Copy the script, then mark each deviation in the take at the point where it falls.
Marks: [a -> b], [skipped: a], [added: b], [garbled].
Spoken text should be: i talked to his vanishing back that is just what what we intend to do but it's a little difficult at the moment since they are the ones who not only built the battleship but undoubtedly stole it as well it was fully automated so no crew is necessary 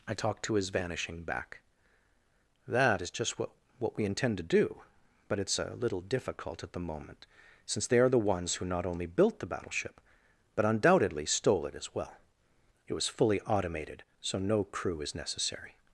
i talked to his vanishing back that is just what what we intend to do but it's a little difficult at the moment since they are the ones who not only built the battleship but undoubtedly stole it as well it was fully automated so no crew is necessary